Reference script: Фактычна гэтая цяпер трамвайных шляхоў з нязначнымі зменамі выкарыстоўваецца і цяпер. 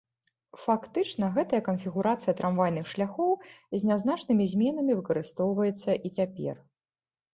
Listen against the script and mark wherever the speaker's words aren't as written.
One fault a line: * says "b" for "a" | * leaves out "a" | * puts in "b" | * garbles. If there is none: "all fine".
* says "канфігурацыя" for "цяпер"